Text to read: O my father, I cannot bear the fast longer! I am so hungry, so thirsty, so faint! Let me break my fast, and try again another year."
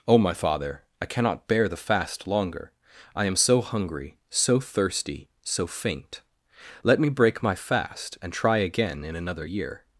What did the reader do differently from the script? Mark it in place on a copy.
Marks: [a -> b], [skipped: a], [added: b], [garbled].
O my father, I cannot bear the fast longer! I am so hungry, so thirsty, so faint! Let me break my fast, and try again [added: in] another year."